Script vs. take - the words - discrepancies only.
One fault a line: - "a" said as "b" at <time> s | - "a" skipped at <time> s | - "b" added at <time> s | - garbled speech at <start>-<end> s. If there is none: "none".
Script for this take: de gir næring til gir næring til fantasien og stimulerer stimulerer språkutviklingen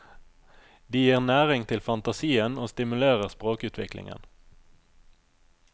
- "gir næring til" skipped at 1.8 s
- "stimulerer" skipped at 3.3 s